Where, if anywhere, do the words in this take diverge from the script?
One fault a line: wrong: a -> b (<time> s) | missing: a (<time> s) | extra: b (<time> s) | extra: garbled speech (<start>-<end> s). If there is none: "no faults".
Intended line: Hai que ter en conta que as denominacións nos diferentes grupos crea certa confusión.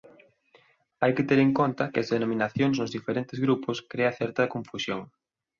no faults